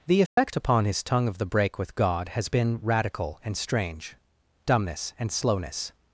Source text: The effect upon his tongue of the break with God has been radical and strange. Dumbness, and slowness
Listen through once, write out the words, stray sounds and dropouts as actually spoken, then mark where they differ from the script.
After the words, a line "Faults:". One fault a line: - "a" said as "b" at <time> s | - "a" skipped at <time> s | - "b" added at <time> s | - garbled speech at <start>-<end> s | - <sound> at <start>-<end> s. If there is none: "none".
The effect upon his tongue of the break with God has been radical and strange. Dumbness, and slowness
Faults:
- dropout at 0.3-0.4 s